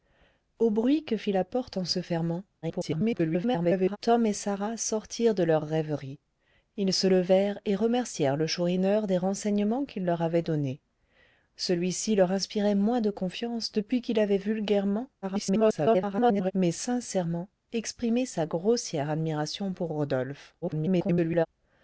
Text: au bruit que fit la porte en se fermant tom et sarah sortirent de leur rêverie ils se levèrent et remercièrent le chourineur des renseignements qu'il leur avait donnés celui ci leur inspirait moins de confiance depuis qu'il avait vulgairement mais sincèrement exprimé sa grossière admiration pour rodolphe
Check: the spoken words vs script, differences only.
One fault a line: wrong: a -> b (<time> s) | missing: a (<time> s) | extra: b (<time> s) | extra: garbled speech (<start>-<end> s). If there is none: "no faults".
extra: garbled speech (2.6-4.0 s)
extra: garbled speech (15.2-16.5 s)
extra: garbled speech (20.6-21.5 s)